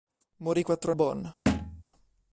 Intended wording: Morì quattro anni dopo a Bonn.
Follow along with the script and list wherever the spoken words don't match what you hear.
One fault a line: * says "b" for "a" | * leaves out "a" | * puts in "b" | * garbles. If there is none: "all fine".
* leaves out "anni dopo a"